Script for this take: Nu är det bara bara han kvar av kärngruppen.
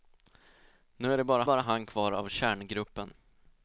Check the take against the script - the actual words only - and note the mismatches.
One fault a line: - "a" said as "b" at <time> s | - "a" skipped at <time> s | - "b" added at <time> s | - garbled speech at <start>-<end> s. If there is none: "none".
none